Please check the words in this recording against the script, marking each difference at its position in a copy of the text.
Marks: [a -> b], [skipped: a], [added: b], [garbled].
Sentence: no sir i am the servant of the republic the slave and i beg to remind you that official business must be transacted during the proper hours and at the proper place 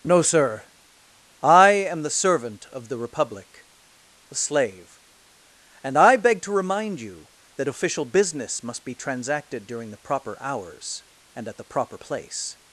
no sir i am the servant of the republic the slave and i beg to remind you that official business must be transacted during the proper hours and at the proper place